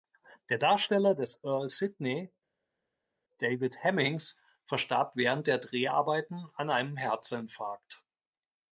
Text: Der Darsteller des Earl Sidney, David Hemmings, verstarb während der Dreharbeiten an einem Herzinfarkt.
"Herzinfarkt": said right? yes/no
yes